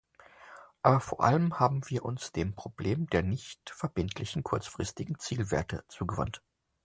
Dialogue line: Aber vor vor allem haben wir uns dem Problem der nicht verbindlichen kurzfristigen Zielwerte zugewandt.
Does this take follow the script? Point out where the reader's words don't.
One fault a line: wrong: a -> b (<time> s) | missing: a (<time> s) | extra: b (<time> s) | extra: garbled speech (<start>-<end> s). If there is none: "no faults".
missing: vor (1.2 s)